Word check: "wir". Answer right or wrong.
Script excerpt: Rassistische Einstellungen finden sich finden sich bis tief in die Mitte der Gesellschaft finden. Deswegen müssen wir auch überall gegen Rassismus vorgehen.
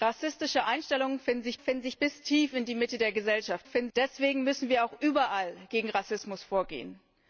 right